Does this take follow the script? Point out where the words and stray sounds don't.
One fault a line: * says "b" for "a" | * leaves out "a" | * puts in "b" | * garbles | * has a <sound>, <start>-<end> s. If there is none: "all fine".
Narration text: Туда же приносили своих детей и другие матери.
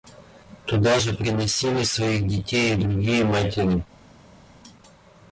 all fine